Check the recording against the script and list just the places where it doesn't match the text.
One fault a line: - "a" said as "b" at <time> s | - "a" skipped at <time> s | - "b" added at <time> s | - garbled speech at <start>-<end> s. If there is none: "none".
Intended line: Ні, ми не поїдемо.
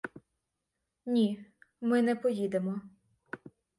none